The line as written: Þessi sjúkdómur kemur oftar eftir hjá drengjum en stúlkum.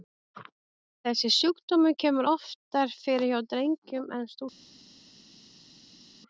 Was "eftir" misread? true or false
true